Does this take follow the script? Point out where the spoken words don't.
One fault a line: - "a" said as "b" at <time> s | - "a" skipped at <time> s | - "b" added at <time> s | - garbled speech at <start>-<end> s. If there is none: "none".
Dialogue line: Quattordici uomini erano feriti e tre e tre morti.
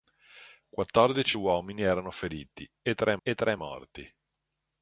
none